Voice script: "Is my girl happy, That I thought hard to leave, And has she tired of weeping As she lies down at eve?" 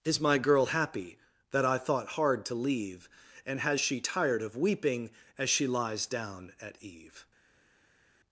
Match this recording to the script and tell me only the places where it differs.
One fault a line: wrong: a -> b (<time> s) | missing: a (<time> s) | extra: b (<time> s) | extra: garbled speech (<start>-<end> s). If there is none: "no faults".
no faults